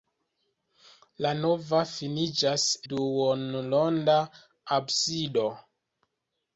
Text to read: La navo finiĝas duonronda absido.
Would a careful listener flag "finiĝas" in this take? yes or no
no